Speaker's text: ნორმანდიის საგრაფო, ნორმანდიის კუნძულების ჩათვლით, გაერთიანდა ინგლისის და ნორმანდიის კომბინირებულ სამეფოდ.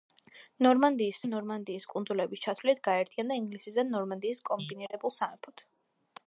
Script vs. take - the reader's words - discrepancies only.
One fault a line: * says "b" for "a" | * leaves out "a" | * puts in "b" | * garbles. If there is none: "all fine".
* leaves out "საგრაფო"